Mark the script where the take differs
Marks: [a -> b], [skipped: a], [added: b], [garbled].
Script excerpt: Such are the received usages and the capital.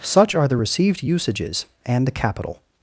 Such are the received usages and the capital.